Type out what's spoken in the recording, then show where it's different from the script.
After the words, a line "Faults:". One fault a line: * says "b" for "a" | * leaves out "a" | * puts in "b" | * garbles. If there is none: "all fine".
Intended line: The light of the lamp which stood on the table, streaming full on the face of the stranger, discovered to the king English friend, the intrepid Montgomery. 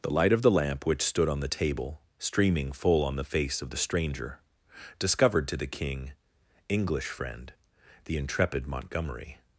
The light of the lamp which stood on the table, streaming full on the face of the stranger, discovered to the king English friend, the intrepid Montgomery.
Faults:
all fine